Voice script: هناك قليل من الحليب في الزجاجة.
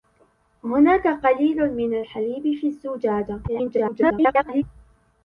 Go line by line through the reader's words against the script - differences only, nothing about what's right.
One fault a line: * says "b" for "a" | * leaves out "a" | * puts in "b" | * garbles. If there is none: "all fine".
* garbles